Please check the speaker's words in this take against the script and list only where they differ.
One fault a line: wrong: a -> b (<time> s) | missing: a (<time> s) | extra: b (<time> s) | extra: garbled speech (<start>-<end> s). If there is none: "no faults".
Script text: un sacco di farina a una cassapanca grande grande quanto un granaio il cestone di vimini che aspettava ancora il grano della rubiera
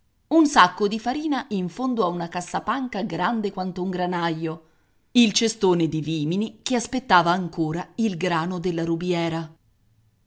extra: in fondo (1.5 s)
missing: grande (3.5 s)